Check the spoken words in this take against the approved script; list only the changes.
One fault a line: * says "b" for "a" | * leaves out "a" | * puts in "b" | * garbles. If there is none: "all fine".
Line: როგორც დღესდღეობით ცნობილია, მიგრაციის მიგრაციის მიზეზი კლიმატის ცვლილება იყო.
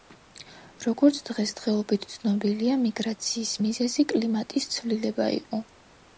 * leaves out "მიგრაციის"